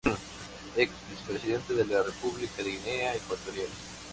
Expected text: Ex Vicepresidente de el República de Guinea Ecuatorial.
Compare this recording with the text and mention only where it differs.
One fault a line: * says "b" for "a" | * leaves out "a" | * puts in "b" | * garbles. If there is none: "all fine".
* says "la" for "el"